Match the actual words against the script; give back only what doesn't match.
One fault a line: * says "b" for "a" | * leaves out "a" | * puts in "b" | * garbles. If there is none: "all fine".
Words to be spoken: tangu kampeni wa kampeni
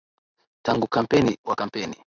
all fine